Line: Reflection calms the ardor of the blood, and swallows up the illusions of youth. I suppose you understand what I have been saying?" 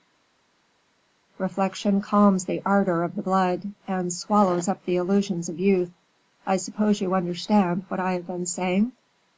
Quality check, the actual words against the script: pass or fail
pass